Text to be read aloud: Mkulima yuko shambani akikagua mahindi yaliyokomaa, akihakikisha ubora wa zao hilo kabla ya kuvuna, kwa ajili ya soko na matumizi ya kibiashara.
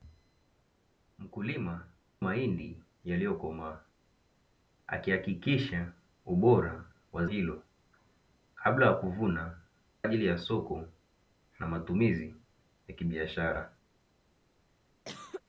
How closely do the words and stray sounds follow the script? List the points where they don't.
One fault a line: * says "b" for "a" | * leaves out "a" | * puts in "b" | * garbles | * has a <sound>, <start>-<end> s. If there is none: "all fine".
* leaves out "yuko shambani akikagua"
* leaves out "zao"
* leaves out "kwa"
* has a cough, 15.1-15.4 s